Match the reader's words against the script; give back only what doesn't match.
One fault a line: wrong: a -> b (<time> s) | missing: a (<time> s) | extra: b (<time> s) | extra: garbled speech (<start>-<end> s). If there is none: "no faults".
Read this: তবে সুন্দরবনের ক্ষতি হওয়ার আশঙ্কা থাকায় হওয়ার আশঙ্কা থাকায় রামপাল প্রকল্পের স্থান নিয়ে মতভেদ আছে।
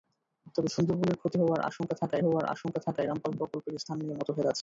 no faults